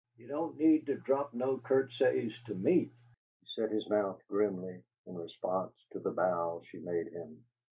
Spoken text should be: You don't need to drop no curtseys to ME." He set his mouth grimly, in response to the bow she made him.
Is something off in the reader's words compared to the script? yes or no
no